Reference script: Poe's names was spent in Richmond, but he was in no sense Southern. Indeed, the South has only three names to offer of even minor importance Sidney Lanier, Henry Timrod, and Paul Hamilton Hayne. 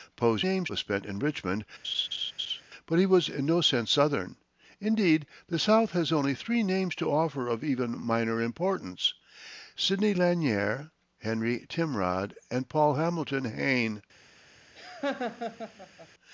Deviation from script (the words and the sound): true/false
true